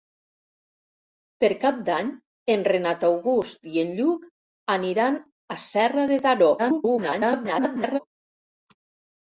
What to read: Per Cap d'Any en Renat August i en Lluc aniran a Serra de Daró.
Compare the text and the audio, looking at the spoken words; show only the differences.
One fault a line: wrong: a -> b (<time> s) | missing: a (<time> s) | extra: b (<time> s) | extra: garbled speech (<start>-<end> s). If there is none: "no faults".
extra: garbled speech (6.6-8.0 s)